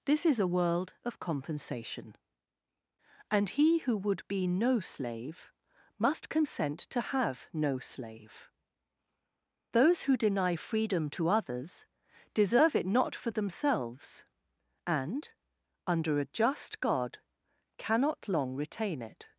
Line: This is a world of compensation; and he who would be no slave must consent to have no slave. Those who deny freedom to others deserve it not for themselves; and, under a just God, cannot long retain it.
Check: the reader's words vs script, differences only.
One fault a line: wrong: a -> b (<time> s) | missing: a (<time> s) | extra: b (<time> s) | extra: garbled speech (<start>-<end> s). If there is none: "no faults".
no faults